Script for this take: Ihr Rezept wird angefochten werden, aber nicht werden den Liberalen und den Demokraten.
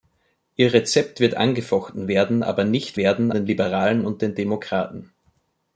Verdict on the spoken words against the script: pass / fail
pass